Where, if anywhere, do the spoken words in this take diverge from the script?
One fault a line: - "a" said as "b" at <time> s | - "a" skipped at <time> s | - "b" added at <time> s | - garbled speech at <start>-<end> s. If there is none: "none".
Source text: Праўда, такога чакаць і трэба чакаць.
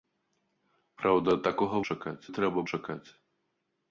none